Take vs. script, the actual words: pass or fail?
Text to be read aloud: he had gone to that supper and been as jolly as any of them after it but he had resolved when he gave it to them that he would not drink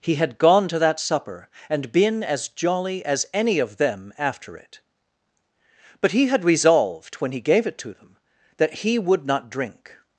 pass